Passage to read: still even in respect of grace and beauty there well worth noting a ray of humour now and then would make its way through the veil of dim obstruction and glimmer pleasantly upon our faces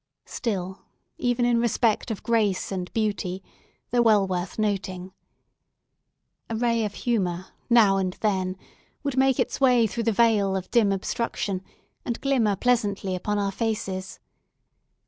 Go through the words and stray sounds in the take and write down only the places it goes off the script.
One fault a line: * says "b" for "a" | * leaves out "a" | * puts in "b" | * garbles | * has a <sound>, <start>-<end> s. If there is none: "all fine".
all fine